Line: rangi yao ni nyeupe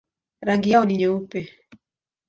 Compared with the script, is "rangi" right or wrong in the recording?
right